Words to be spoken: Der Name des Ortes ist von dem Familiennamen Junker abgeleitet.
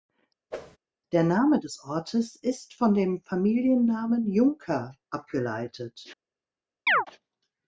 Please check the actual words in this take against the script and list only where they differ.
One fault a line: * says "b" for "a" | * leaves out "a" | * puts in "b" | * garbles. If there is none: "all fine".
all fine